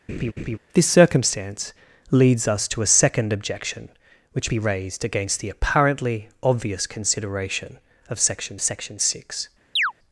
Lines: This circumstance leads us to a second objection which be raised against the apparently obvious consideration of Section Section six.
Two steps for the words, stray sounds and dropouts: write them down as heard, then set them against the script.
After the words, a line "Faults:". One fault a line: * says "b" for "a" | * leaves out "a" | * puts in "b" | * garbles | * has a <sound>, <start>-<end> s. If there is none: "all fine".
This circumstance leads us to a second objection which be raised against the apparently obvious consideration of Section Section six.
Faults:
* has a laugh, 0.1-0.6 s
* has a chirp, 9.8-9.9 s